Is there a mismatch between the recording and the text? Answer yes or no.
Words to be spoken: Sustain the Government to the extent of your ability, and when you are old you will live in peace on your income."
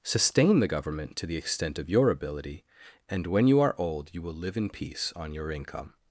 no